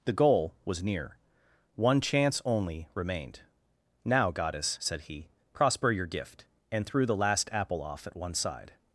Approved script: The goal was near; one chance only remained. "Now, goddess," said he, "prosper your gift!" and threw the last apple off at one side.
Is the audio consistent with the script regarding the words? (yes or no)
yes